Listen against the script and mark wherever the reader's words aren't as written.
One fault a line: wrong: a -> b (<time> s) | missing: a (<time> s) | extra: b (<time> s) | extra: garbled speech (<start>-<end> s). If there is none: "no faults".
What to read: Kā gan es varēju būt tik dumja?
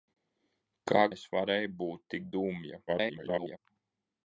missing: gan (1.0 s)
extra: garbled speech (2.9-3.6 s)